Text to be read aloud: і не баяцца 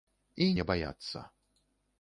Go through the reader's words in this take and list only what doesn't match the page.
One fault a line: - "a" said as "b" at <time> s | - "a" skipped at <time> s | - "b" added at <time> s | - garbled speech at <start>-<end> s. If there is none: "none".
none